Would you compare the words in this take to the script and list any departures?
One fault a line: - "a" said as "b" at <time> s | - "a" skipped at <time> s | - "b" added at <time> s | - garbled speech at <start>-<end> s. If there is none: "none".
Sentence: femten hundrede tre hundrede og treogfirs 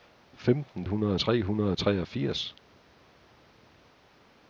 none